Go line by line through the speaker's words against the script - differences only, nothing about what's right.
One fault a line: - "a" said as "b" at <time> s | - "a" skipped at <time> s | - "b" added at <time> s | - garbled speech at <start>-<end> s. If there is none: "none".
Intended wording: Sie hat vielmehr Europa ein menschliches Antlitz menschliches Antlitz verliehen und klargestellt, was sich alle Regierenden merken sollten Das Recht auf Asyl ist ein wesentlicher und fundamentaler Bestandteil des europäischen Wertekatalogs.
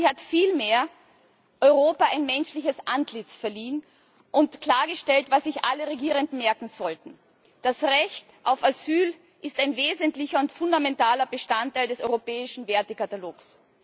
- "menschliches Antlitz" skipped at 3.4 s